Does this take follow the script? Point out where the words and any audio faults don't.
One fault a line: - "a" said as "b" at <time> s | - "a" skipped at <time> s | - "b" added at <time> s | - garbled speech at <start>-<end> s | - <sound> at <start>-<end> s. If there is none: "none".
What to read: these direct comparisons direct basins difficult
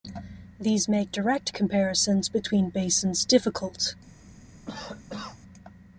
- "make" added at 0.9 s
- "direct" said as "between" at 2.3 s
- cough at 4.7-5.4 s